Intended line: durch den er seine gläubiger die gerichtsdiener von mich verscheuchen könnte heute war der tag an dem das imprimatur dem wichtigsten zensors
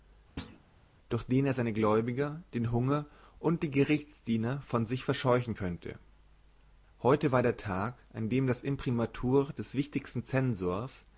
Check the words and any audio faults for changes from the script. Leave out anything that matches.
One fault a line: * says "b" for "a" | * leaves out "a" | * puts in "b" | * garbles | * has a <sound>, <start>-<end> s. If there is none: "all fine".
* has a thud, 0.4-0.6 s
* puts in "den hunger und"
* says "sich" for "mich"
* says "des" for "dem"